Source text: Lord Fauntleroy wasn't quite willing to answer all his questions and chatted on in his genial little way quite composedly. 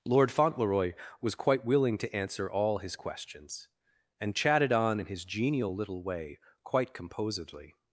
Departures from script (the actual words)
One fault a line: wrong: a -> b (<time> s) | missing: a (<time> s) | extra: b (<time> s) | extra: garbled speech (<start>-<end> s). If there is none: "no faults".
wrong: wasn't -> was (1.2 s)